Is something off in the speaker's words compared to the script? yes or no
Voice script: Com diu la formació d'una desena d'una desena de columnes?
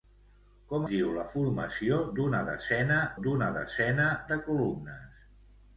no